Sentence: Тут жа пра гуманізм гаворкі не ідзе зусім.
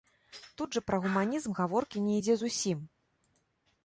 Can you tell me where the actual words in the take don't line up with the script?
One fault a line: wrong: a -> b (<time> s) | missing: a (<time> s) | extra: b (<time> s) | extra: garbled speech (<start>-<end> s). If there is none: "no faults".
no faults